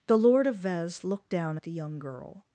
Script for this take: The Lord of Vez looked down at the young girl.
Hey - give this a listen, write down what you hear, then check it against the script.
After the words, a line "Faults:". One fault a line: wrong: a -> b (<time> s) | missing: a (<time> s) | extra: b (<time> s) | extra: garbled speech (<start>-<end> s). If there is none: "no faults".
The Lord of Vez looked down at the young girl.
Faults:
no faults